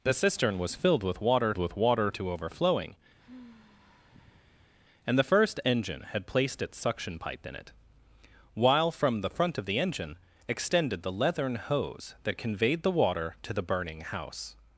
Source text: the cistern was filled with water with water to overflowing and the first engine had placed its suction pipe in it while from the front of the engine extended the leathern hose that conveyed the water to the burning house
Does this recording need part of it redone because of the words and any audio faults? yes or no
yes